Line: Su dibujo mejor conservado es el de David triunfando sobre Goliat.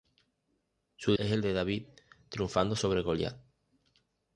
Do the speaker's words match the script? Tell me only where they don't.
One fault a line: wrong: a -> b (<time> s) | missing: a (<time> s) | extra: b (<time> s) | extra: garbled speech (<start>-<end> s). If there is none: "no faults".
missing: dibujo mejor conservado (1.1 s)